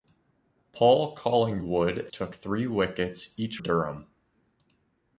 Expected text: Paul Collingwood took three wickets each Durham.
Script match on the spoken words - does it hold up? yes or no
yes